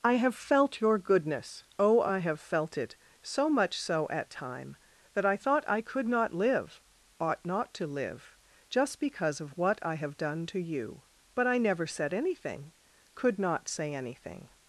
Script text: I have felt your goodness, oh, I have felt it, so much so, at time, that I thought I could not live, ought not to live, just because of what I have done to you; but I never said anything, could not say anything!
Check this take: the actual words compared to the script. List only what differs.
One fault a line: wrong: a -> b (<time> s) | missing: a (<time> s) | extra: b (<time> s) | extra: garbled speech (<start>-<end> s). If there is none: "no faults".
no faults